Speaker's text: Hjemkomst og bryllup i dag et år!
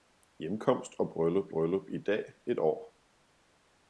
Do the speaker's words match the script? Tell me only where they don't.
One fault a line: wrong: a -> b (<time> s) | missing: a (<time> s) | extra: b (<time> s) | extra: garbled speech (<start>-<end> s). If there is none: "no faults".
extra: bryllup (1.5 s)